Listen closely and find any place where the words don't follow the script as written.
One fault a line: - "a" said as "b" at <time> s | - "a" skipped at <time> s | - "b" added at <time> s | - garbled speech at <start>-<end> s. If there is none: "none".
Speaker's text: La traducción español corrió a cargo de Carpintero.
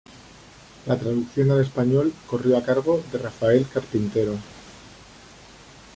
- "al" added at 1.5 s
- "Rafael" added at 3.2 s